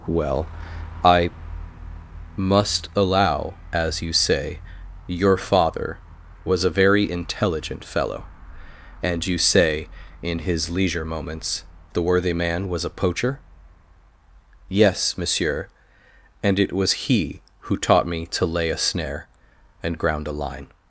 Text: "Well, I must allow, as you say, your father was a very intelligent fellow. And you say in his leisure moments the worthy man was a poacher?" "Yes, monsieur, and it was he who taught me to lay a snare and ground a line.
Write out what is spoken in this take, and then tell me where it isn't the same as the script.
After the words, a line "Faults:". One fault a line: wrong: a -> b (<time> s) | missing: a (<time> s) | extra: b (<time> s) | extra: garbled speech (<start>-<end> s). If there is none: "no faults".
"Well, I must allow, as you say, your father was a very intelligent fellow. And you say in his leisure moments the worthy man was a poacher?" "Yes, monsieur, and it was he who taught me to lay a snare and ground a line.
Faults:
no faults